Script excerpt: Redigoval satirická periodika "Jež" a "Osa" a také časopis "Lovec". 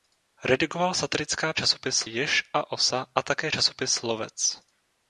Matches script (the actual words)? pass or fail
fail